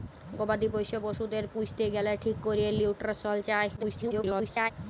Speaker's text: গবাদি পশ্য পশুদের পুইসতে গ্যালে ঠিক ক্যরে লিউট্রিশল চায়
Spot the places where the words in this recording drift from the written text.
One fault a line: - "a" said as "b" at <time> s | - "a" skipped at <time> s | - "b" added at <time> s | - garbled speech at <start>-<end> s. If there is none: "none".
- garbled speech at 3.8-4.7 s